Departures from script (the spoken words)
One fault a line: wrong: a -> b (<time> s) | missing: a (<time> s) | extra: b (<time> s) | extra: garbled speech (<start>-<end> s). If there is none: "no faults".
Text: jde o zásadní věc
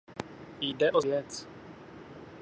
missing: zásadní (1.0 s)